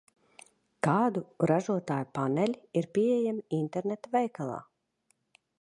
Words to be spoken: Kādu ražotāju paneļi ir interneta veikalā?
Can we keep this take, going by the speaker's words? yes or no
no